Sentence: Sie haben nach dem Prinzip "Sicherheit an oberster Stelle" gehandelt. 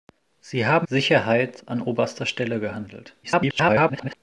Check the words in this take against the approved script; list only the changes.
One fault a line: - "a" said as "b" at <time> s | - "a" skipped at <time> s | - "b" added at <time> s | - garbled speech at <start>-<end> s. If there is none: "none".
- "nach dem Prinzip" skipped at 0.9 s
- garbled speech at 3.2-4.1 s